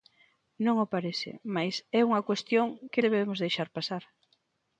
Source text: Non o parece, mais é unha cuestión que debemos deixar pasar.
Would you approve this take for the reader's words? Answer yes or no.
yes